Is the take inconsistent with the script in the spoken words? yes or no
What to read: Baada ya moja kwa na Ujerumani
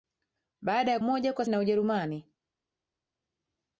no